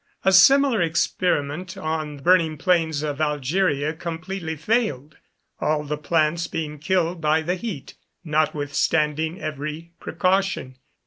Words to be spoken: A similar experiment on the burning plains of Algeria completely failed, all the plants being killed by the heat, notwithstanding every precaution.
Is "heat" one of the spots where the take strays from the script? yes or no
no